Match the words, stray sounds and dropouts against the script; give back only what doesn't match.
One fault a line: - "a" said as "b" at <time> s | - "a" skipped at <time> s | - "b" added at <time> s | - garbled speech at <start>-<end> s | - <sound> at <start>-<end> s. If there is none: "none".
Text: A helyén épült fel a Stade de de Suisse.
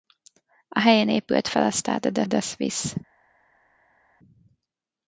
none